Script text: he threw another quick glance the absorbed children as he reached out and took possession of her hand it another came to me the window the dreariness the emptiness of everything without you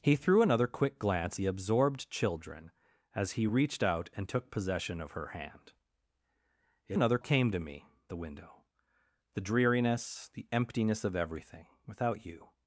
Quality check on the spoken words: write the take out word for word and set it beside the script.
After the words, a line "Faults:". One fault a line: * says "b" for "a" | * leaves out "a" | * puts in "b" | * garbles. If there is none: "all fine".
he threw another quick glance the absorbed children as he reached out and took possession of her hand it another came to me the window the dreariness the emptiness of everything without you
Faults:
all fine